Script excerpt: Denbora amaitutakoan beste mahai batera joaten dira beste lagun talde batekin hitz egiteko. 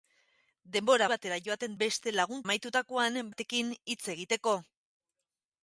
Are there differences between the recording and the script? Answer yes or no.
yes